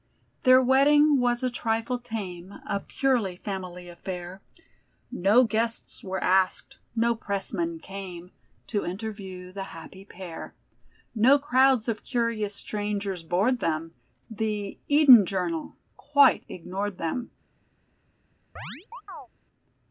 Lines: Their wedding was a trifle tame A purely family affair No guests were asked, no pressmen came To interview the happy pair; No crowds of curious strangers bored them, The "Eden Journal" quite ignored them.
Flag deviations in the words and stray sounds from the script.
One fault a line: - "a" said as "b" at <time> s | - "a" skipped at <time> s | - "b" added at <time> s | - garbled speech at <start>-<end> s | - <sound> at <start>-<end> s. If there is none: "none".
- chirp at 18.6-19.3 s